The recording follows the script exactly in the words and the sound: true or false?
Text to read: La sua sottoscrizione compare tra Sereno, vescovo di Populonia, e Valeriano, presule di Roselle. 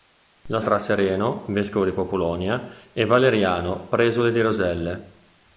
false